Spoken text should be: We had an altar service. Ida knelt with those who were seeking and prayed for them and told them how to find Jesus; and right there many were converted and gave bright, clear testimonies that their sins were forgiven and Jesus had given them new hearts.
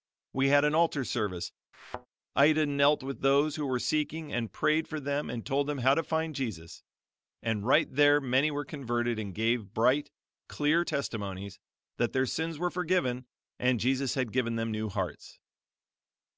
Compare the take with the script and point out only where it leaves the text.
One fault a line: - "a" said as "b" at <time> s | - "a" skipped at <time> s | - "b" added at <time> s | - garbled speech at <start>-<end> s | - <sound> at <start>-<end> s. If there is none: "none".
- thud at 1.7-2.1 s